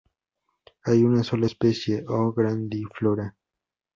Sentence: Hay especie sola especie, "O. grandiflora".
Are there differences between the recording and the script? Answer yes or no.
yes